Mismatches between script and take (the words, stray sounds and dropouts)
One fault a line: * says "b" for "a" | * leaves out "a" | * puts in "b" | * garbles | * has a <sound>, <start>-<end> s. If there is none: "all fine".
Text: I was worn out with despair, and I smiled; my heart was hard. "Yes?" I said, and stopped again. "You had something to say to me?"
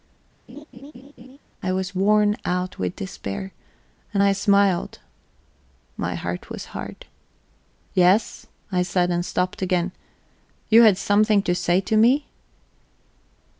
* has a laugh, 0.5-1.4 s